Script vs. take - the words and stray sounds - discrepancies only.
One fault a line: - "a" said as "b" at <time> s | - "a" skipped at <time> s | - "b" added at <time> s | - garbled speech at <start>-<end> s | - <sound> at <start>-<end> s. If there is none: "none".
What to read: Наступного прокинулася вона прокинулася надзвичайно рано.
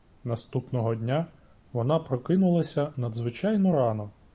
- "прокинулася" said as "дня" at 0.9 s